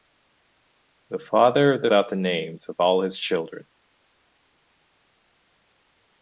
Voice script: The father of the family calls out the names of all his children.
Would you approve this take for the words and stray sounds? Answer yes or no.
no